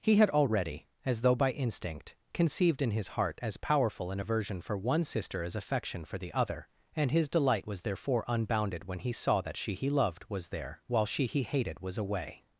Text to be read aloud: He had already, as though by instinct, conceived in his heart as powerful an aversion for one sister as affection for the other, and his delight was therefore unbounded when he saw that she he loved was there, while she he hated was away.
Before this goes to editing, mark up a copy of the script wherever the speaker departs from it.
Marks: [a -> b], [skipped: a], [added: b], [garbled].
He had already, as though by instinct, conceived in his heart as powerful an aversion for one sister as affection for the other, and his delight was therefore unbounded when he saw that she he loved was there, while she he hated was away.